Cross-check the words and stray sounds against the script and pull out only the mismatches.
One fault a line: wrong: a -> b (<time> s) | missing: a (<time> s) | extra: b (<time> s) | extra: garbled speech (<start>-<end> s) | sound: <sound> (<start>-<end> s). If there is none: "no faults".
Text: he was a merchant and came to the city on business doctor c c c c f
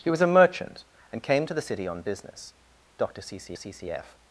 no faults